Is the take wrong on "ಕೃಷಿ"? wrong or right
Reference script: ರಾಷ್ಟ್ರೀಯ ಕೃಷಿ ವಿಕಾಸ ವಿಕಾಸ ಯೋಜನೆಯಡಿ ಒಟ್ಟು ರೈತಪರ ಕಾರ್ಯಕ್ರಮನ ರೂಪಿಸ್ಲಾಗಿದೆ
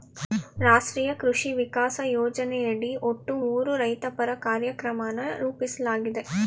right